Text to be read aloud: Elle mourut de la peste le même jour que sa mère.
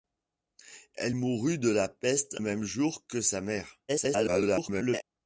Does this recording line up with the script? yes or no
no